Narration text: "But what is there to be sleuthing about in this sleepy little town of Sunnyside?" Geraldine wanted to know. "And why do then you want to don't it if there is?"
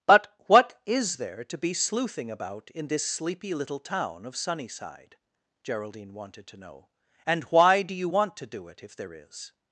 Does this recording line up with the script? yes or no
no